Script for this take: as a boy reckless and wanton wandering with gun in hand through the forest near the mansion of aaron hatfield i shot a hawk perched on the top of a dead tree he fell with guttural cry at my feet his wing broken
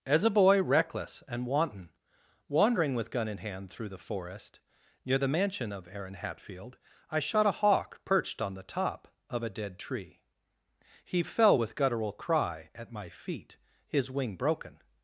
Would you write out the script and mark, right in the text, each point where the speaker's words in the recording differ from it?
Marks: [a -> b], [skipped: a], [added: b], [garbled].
as a boy reckless and wanton wandering with gun in hand through the forest near the mansion of aaron hatfield i shot a hawk perched on the top of a dead tree he fell with guttural cry at my feet his wing broken